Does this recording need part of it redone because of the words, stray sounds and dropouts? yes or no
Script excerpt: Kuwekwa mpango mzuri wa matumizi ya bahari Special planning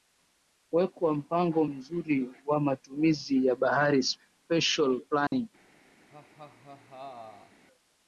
yes